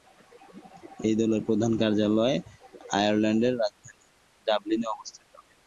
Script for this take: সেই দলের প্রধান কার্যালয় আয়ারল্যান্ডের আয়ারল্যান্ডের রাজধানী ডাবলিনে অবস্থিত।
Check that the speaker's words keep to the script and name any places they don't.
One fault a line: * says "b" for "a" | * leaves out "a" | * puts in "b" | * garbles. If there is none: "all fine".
* says "এই" for "সেই"
* leaves out "আয়ারল্যান্ডের"